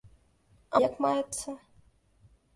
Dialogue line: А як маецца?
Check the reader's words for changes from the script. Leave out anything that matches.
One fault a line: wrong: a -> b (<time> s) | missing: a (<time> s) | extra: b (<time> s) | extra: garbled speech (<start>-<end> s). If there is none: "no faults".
no faults